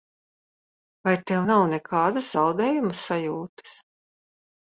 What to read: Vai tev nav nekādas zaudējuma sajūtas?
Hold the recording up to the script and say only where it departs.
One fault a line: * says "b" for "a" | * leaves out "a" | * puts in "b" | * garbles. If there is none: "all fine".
all fine